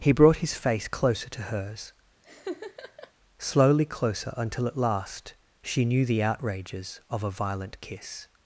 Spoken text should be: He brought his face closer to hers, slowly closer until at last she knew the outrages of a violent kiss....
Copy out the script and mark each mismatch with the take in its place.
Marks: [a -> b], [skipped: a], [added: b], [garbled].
He brought his face closer to hers, slowly closer until at last she knew the outrages of a violent kiss....